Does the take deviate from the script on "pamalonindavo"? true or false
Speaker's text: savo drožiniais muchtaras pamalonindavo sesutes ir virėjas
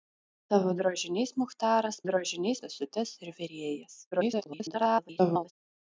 true